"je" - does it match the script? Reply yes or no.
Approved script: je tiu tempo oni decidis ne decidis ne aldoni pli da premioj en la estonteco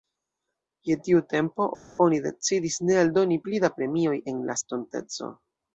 yes